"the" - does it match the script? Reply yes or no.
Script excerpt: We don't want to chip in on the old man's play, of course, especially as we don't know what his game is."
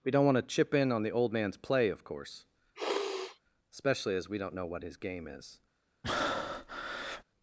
yes